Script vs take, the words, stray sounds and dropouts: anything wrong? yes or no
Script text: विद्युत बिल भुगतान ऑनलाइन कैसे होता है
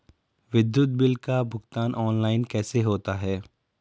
yes